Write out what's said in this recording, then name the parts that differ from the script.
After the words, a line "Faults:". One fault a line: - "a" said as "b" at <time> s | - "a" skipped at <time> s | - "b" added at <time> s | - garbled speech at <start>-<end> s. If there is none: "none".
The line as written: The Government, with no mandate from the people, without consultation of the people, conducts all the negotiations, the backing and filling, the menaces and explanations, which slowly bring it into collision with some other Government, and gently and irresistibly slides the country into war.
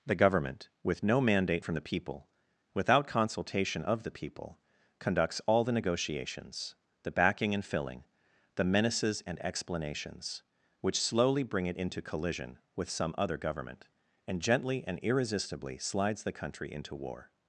The Government, with no mandate from the people, without consultation of the people, conducts all the negotiations, the backing and filling, the menaces and explanations, which slowly bring it into collision with some other Government, and gently and irresistibly slides the country into war.
Faults:
none